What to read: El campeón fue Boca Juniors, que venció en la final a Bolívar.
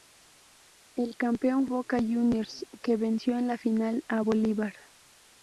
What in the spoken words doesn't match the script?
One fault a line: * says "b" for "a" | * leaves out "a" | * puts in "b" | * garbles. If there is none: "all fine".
* leaves out "fue"